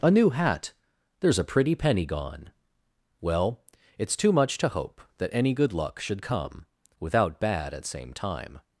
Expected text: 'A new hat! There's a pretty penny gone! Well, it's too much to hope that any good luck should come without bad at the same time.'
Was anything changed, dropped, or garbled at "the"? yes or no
yes